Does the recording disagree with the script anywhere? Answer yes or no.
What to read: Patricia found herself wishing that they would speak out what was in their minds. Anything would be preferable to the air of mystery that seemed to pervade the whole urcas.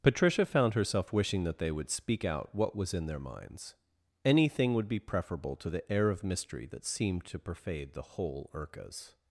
no